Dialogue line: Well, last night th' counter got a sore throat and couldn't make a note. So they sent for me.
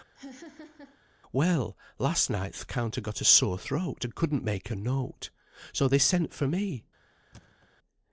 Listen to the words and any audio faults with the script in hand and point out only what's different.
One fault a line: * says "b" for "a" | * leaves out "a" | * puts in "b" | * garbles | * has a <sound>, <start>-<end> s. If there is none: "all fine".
* has a laugh, 0.1-1.0 s
* has a thud, 7.3-7.7 s